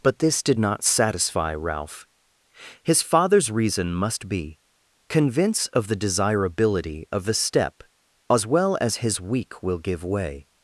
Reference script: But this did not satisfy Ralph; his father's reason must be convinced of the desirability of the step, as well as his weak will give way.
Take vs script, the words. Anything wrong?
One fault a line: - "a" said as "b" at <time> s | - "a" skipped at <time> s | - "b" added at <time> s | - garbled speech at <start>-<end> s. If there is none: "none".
- "convinced" said as "convince" at 5.1 s